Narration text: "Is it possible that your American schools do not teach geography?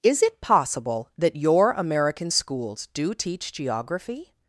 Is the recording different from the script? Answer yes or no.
yes